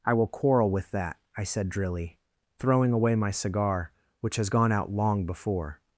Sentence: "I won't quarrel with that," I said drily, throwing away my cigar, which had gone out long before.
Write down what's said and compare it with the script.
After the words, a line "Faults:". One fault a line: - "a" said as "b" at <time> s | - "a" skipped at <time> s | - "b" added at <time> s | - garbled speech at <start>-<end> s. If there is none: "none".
"I will quarrel with that," I said drily, throwing away my cigar, which has gone out long before.
Faults:
- "won't" said as "will" at 0.1 s
- "had" said as "has" at 4.3 s